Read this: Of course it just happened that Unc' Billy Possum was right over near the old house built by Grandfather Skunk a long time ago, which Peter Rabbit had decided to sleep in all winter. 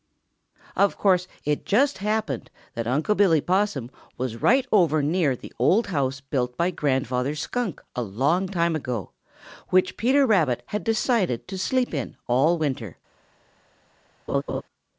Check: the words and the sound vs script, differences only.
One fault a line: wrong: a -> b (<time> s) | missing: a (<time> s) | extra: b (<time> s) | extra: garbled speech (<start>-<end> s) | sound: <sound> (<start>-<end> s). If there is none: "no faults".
sound: laugh (14.3-14.6 s)